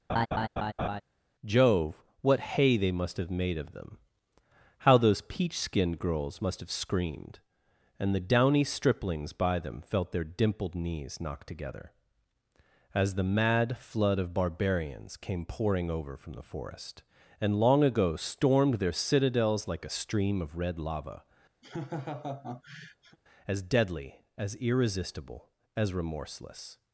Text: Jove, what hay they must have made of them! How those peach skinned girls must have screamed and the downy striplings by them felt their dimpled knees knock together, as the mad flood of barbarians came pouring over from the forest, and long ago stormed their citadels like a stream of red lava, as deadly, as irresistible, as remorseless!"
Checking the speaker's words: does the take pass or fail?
pass